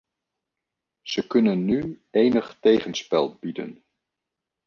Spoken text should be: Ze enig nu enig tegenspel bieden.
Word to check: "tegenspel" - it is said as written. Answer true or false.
true